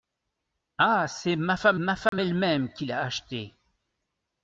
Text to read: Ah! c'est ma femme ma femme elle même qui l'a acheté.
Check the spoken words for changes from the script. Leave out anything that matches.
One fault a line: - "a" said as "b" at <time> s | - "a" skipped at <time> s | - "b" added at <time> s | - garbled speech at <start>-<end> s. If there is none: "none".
none